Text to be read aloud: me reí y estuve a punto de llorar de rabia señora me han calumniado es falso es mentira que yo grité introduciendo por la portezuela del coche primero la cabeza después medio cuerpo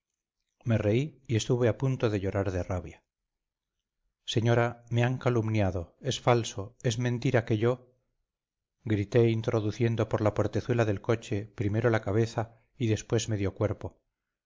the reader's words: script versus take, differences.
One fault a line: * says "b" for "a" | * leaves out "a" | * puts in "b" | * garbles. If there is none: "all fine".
* puts in "y"